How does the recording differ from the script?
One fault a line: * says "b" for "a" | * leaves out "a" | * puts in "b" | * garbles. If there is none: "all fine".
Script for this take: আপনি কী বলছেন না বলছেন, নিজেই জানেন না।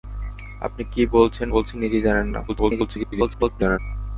* leaves out "না"
* garbles